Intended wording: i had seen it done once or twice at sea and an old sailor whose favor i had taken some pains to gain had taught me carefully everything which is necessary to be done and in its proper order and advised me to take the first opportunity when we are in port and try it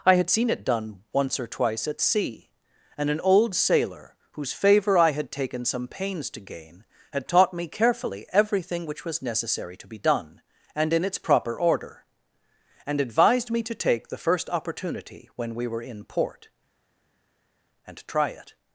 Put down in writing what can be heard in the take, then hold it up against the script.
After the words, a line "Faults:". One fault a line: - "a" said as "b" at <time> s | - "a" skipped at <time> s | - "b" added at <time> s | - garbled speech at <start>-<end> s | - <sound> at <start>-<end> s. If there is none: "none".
i had seen it done once or twice at sea and an old sailor whose favor i had taken some pains to gain had taught me carefully everything which was necessary to be done and in its proper order and advised me to take the first opportunity when we were in port and try it
Faults:
- "is" said as "was" at 9.0 s
- "are" said as "were" at 15.7 s